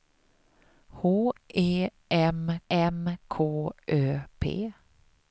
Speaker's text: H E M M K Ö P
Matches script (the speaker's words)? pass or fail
pass